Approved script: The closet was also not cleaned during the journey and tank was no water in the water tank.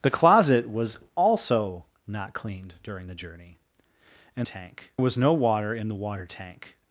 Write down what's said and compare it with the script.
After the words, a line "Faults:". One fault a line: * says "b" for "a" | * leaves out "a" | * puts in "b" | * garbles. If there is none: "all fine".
The closet was also not cleaned during the journey and tank was no water in the water tank.
Faults:
all fine